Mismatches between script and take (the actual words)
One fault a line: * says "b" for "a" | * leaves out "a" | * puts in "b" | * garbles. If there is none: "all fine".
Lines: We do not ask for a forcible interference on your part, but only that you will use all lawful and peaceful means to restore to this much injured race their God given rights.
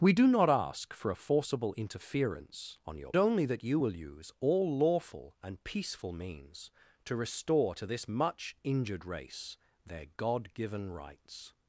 * leaves out "part but"